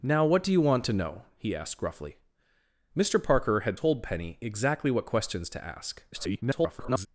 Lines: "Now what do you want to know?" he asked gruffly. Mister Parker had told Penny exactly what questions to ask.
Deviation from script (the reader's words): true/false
true